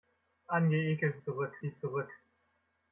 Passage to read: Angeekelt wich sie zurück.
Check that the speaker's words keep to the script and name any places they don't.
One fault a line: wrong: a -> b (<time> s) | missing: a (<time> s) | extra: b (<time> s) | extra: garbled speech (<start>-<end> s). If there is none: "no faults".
wrong: wich -> zurück (1.2 s)